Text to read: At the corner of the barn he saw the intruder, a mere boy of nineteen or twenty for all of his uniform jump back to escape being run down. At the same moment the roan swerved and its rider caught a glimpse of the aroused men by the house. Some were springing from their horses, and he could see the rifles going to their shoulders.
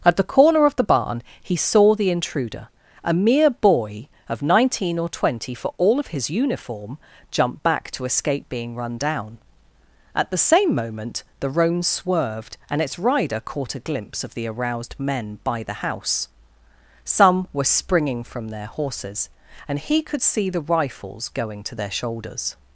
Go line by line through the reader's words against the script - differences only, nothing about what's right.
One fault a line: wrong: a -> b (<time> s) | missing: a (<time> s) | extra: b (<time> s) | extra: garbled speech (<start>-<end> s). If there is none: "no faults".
no faults